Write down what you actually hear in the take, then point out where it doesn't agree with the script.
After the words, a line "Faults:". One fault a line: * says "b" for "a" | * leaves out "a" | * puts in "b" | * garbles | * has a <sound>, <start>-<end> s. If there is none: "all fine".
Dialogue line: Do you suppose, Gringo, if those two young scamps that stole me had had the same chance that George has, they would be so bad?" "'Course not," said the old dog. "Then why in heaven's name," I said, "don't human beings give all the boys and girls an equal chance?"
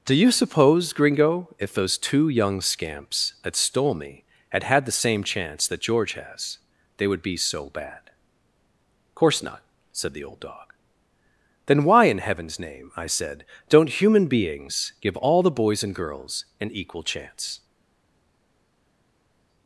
Do you suppose, Gringo, if those two young scamps that stole me had had the same chance that George has, they would be so bad?" "'Course not," said the old dog. "Then why in heaven's name," I said, "don't human beings give all the boys and girls an equal chance?"
Faults:
all fine